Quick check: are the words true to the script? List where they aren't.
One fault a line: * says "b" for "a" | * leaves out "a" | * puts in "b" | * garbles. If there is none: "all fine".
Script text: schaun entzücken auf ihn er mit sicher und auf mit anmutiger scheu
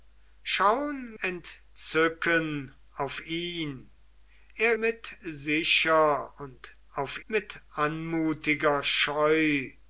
all fine